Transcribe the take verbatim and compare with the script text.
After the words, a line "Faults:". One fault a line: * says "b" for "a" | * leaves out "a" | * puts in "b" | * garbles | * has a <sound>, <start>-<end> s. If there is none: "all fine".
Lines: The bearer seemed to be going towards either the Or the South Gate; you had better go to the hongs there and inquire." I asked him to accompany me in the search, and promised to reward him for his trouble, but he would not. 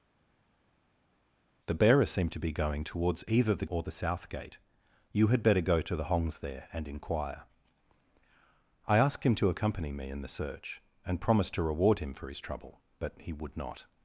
The bearer seemed to be going towards either the Or the South Gate; you had better go to the hongs there and inquire." I asked him to accompany me in the search, and promised to reward him for his trouble, but he would not.
Faults:
all fine